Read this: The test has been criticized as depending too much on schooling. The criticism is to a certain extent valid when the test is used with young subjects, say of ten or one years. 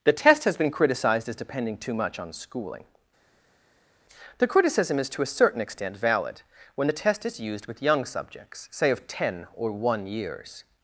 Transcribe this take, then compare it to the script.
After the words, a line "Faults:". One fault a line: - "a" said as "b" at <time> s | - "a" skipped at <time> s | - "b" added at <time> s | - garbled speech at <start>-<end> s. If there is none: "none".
The test has been criticized as depending too much on schooling. The criticism is to a certain extent valid when the test is used with young subjects, say of ten or one years.
Faults:
none